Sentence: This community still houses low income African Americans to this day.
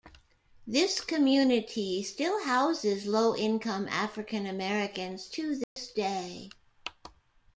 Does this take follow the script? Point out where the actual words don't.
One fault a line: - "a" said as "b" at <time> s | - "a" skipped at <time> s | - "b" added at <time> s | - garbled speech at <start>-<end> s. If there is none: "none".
none